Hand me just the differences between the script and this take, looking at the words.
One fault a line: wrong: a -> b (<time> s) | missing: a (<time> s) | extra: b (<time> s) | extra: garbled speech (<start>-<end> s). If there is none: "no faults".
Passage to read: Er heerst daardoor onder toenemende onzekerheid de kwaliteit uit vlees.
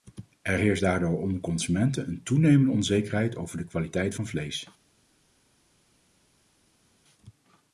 extra: consumenten een (1.4 s)
extra: over (3.4 s)
wrong: uit -> van (4.1 s)